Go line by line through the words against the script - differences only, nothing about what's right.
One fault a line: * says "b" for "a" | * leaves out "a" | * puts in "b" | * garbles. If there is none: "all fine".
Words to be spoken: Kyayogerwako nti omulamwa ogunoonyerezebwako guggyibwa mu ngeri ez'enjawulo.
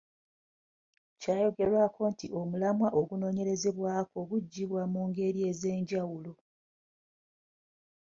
all fine